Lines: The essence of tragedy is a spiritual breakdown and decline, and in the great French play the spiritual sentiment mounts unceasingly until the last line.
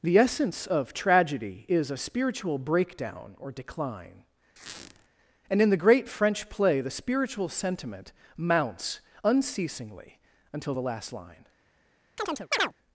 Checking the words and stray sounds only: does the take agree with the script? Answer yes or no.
no